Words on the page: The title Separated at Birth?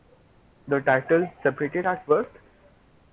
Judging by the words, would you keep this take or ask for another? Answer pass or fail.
pass